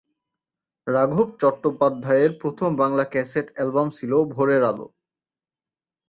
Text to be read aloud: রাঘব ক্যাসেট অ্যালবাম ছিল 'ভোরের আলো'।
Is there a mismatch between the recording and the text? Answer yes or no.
yes